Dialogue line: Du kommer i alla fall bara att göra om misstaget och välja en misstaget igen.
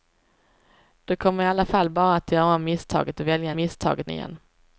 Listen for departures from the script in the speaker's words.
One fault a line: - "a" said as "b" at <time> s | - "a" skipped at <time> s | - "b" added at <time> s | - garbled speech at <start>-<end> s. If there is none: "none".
none